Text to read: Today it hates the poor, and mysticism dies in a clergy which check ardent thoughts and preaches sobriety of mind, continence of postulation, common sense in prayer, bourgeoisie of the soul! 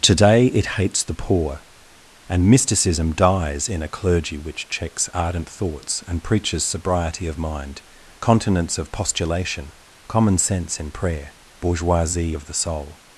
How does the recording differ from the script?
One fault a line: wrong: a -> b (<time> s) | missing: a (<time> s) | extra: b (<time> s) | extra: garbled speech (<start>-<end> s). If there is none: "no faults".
wrong: check -> checks (4.7 s)